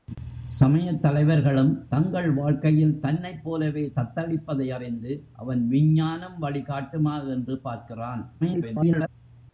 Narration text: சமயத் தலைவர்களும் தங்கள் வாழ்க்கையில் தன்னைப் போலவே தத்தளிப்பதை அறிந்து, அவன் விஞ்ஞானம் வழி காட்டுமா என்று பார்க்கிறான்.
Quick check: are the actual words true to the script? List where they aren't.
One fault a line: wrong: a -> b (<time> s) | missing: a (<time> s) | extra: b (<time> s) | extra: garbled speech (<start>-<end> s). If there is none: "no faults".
extra: garbled speech (8.4-9.1 s)